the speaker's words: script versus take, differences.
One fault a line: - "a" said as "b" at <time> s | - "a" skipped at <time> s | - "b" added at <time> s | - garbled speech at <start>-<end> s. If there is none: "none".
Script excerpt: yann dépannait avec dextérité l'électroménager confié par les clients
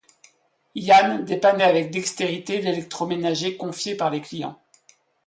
none